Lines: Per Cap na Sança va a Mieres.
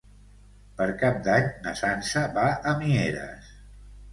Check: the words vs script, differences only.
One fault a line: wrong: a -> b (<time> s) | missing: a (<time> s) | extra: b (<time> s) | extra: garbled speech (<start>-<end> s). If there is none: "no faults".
extra: d'Any (1.3 s)